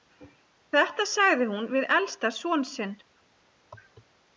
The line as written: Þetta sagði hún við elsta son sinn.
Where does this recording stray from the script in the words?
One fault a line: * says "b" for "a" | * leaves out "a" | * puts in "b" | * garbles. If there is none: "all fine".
all fine